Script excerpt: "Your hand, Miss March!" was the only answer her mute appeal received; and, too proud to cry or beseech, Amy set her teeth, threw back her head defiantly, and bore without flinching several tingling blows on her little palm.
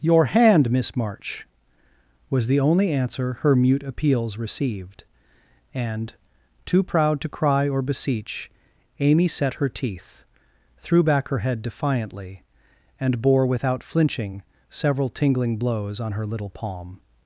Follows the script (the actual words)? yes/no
no